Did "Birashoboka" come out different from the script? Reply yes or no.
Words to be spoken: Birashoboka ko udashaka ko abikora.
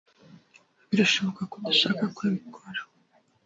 no